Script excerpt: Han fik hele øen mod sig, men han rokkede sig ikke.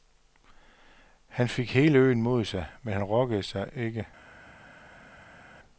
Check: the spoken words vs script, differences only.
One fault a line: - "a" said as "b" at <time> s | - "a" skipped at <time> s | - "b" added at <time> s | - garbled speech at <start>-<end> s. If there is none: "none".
none